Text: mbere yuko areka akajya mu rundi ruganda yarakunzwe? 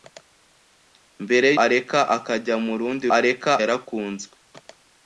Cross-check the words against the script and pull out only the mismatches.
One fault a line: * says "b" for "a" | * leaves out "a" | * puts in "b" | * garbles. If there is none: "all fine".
* leaves out "yuko"
* says "areka" for "ruganda"